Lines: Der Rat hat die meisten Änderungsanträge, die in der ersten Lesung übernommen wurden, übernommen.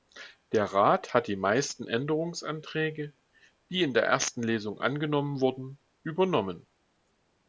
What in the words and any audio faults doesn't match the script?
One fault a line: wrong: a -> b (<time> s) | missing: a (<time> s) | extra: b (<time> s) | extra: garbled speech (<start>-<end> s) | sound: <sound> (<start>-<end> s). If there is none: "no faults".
wrong: übernommen -> angenommen (4.8 s)